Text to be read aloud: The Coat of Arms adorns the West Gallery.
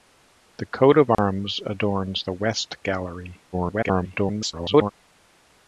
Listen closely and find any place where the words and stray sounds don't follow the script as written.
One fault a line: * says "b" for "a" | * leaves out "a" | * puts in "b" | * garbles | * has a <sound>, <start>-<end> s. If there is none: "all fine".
* has a dropout, 1.1-1.2 s
* garbles